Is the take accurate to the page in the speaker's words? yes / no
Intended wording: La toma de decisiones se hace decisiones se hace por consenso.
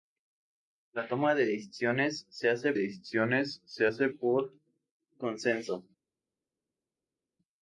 yes